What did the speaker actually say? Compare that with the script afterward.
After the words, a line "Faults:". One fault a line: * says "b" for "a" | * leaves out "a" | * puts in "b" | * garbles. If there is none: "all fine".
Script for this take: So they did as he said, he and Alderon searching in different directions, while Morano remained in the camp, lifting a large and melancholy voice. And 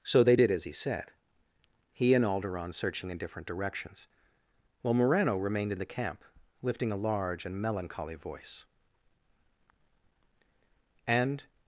So they did as he said, he and Alderon searching in different directions, while Morano remained in the camp, lifting a large and melancholy voice. And
Faults:
all fine